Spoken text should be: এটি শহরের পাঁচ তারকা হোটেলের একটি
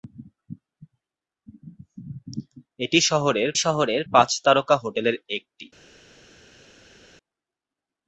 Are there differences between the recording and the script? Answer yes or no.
yes